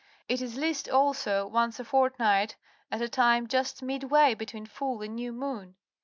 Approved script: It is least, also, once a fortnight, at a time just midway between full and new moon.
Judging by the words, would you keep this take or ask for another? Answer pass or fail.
pass